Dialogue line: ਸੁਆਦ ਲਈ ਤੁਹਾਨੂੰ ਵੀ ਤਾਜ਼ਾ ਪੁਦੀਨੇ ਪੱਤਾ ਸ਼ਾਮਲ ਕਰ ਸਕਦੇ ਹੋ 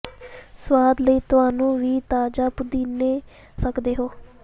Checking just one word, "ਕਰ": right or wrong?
wrong